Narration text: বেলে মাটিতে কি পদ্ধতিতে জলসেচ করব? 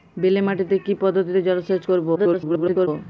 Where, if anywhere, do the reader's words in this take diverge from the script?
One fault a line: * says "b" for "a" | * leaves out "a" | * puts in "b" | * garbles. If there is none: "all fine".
* garbles